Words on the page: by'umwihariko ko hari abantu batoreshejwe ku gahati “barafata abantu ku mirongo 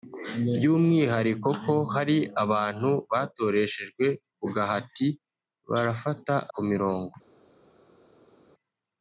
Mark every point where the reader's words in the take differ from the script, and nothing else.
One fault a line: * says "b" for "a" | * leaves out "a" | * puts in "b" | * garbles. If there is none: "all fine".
* leaves out "abantu"